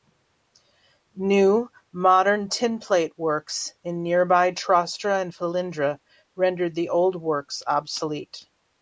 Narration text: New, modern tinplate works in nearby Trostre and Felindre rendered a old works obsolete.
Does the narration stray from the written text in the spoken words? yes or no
yes